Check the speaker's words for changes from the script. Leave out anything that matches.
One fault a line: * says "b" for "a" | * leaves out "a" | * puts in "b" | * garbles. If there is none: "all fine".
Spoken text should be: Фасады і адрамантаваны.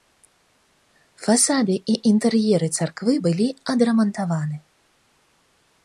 * puts in "інтэр'еры царквы былі"